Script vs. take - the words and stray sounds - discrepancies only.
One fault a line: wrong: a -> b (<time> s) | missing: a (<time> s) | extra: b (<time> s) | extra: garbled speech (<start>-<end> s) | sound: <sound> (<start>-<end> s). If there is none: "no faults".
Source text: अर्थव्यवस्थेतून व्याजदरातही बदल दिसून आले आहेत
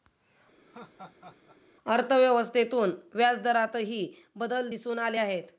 sound: laugh (0.7-1.6 s)